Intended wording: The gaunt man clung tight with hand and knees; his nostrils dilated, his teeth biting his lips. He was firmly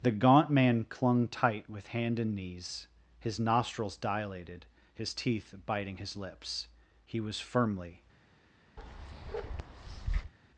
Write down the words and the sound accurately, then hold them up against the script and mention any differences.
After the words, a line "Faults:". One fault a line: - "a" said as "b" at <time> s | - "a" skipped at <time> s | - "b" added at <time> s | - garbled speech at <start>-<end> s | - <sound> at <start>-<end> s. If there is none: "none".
The gaunt man clung tight with hand and knees; his nostrils dilated, his teeth biting his lips. He was firmly
Faults:
- bark at 8.8-10.3 s